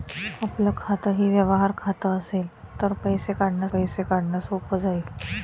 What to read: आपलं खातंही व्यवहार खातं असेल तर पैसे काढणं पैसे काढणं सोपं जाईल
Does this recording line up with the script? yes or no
yes